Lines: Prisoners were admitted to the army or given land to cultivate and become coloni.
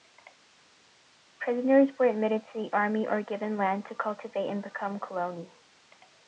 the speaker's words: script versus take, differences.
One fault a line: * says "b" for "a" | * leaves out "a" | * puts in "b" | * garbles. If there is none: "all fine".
all fine